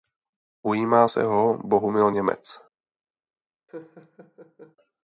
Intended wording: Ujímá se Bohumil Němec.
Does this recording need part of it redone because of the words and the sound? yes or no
yes